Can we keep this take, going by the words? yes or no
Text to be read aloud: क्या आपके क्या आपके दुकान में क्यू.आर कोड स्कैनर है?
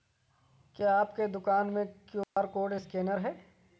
no